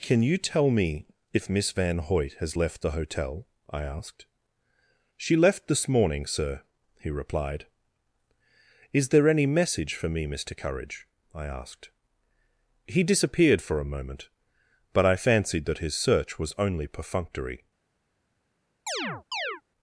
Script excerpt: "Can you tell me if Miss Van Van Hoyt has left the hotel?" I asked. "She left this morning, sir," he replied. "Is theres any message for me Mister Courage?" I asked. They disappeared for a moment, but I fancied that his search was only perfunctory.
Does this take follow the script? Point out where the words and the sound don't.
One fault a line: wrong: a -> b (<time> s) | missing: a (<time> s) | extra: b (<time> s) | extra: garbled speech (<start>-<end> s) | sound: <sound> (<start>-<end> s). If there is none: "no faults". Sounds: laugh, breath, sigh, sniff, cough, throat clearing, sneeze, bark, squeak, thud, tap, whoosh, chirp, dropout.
missing: Van (2.0 s)
wrong: theres -> there (9.1 s)
wrong: They -> He (12.9 s)
sound: chirp (18.9-19.6 s)